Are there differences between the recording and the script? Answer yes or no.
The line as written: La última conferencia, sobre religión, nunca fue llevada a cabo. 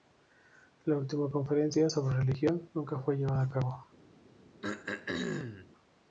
no